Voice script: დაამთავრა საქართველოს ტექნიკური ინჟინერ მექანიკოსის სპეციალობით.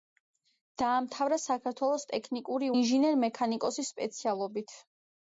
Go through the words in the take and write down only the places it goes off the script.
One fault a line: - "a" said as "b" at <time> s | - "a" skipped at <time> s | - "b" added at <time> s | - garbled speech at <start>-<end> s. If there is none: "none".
none